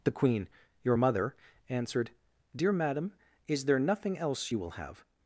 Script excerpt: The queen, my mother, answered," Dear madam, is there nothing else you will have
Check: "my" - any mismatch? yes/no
yes